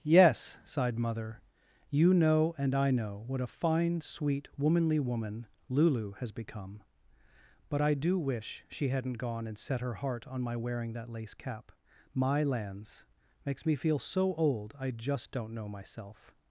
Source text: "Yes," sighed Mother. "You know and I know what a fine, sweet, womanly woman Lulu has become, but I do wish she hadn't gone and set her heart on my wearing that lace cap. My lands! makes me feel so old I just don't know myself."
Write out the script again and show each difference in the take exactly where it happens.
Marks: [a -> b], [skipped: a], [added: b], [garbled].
"Yes," sighed Mother. "You know and I know what a fine, sweet, womanly woman Lulu has become, but I do wish she hadn't gone and set her heart on my wearing that lace cap. My lands! makes me feel so old I just don't know myself."